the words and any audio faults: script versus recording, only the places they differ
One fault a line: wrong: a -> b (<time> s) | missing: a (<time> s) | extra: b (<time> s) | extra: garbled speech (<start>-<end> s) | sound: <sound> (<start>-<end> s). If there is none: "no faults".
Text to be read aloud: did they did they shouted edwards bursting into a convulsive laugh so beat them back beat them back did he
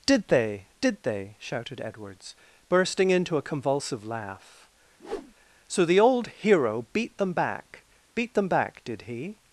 sound: whoosh (5.0-5.3 s)
extra: the old hero (5.8 s)